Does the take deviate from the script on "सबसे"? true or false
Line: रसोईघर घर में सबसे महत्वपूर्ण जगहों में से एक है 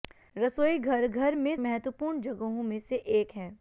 true